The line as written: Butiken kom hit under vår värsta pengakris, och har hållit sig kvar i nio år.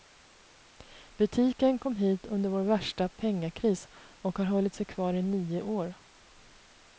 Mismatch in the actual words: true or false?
false